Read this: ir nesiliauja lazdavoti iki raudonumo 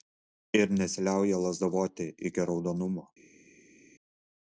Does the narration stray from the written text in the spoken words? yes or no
no